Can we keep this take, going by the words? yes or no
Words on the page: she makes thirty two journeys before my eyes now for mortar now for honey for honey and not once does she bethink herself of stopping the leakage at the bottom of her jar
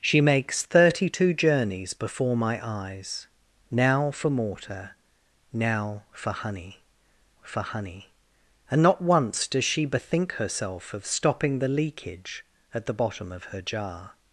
yes